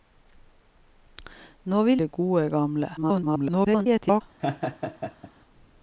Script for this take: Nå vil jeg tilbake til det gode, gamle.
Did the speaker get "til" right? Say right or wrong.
wrong